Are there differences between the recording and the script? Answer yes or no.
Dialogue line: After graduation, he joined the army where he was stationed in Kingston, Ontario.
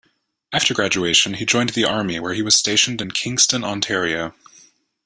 no